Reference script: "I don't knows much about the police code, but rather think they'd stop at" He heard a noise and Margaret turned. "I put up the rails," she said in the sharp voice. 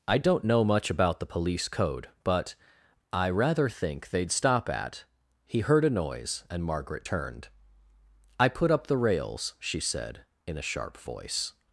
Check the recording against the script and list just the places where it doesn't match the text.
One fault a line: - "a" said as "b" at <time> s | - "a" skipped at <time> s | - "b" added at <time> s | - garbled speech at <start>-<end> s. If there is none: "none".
- "knows" said as "know" at 0.4 s
- "I" added at 3.1 s
- "the" said as "a" at 10.6 s